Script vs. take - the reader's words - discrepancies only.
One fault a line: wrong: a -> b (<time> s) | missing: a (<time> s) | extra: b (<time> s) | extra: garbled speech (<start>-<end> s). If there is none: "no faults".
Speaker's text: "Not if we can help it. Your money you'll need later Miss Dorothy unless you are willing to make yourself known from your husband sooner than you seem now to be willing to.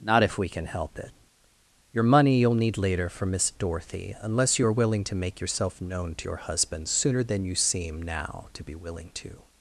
extra: for (3.1 s)
wrong: from -> to (6.1 s)